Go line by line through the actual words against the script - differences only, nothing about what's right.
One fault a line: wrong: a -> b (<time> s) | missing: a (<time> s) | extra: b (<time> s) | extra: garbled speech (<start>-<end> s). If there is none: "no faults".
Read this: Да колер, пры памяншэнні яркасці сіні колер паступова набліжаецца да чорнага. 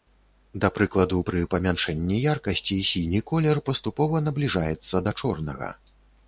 wrong: колер -> прыкладу (0.8 s)